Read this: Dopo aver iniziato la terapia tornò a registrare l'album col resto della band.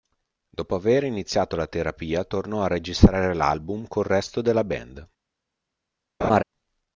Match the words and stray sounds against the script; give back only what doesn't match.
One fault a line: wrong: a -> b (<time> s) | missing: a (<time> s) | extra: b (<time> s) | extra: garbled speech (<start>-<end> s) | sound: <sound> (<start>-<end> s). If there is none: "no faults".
sound: laugh (6.2-6.4 s)